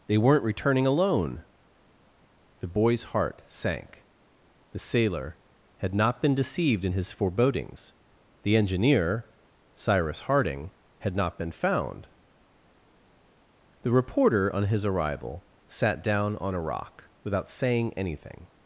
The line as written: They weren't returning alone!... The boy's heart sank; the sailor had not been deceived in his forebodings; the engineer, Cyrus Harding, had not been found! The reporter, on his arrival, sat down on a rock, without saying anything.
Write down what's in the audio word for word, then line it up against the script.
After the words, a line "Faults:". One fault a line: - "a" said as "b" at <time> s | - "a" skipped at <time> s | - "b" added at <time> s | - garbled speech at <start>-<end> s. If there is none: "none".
They weren't returning alone!... The boy's heart sank; the sailor had not been deceived in his forebodings; the engineer, Cyrus Harding, had not been found! The reporter, on his arrival, sat down on a rock, without saying anything.
Faults:
none